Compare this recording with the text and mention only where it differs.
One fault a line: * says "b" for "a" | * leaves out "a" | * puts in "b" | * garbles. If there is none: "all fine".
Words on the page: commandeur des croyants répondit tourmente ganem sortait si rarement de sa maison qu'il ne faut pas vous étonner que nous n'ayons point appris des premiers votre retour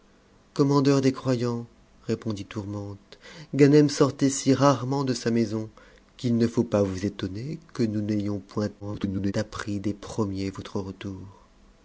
* garbles